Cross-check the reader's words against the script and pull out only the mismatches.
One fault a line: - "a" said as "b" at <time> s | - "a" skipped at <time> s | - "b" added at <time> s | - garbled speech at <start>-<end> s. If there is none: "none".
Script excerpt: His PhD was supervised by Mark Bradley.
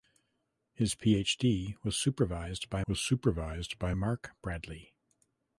- "was supervised by" added at 2.9 s